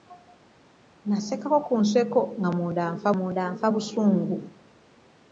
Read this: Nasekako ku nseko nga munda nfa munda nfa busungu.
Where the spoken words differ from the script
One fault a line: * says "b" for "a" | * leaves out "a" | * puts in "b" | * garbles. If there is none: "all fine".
all fine